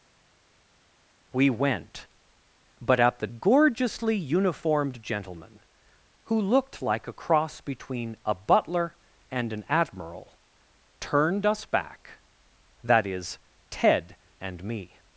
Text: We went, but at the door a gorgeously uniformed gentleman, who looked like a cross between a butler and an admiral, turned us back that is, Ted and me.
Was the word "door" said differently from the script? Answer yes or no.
yes